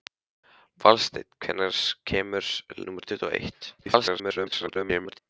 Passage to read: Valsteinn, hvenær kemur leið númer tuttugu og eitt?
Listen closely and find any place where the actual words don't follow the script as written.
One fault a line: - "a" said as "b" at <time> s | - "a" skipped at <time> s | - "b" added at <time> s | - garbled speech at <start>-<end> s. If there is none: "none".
- "leið" skipped at 2.5 s
- garbled speech at 3.8-5.2 s